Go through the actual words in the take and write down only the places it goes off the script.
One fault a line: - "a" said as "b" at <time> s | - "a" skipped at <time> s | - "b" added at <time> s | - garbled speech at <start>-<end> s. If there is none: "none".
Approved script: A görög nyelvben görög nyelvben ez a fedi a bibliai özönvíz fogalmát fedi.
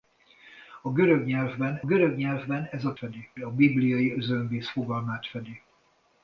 none